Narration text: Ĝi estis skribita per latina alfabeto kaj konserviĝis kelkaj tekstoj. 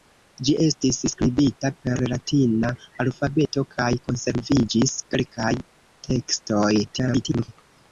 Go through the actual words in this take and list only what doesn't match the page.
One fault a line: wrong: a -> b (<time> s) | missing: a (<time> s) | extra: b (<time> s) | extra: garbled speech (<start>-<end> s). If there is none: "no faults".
extra: garbled speech (6.8-7.5 s)